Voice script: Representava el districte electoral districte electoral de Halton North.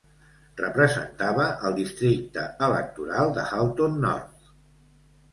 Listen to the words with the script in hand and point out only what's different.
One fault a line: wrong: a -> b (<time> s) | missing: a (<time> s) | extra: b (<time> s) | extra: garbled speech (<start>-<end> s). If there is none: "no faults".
missing: districte electoral (3.3 s)